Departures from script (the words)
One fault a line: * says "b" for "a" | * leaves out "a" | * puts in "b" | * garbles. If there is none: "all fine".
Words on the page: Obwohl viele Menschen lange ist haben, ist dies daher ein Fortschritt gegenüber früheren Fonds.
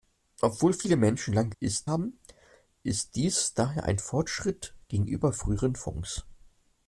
all fine